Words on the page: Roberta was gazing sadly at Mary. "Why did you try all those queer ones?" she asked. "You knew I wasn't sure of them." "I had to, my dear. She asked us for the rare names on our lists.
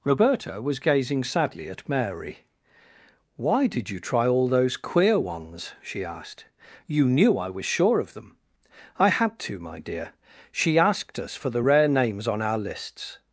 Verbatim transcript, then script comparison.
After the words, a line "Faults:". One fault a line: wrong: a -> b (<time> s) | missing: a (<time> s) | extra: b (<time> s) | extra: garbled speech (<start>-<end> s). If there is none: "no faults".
Roberta was gazing sadly at Mary. "Why did you try all those queer ones?" she asked. "You knew I was sure of them." "I had to, my dear. She asked us for the rare names on our lists.
Faults:
wrong: wasn't -> was (7.5 s)